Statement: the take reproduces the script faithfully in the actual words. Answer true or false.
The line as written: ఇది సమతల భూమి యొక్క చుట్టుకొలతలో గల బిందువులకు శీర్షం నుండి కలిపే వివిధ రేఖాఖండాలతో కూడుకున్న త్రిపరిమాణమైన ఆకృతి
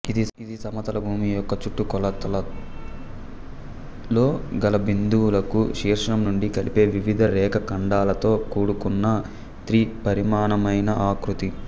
true